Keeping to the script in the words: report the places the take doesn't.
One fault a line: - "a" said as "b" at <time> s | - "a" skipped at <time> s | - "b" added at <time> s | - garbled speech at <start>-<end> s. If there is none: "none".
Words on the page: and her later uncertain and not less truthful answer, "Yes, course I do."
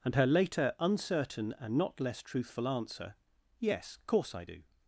none